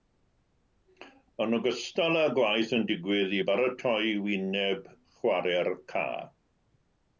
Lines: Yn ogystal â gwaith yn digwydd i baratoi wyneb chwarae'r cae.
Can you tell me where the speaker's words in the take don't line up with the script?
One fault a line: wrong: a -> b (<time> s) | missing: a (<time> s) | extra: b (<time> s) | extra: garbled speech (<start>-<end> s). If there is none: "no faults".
no faults